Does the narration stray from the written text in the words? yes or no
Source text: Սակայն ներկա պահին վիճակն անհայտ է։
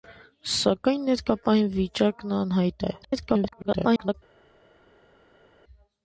yes